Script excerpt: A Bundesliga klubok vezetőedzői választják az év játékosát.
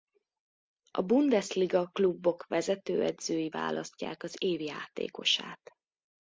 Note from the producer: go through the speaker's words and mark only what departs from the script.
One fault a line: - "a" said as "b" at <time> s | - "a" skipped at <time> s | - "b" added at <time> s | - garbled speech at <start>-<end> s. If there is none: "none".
none